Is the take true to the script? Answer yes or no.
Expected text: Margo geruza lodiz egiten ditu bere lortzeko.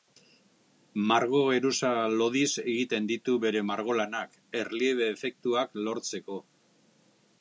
no